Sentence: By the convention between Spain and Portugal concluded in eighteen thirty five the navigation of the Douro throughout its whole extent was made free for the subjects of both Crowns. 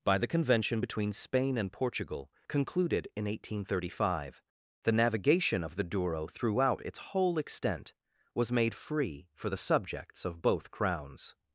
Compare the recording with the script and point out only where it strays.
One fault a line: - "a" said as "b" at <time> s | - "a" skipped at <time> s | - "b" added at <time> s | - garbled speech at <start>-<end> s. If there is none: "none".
none